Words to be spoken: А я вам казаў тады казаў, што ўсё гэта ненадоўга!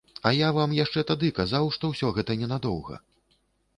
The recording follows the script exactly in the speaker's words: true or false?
false